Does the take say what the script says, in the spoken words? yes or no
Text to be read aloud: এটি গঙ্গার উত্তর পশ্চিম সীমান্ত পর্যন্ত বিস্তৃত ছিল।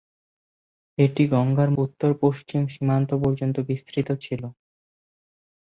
yes